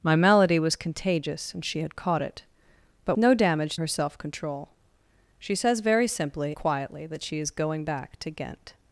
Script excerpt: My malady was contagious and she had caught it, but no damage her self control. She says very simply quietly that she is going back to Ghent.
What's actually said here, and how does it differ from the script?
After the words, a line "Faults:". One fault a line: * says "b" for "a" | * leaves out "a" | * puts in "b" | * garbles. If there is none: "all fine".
My malady was contagious and she had caught it, but no damage her self control. She says very simply quietly that she is going back to Ghent.
Faults:
all fine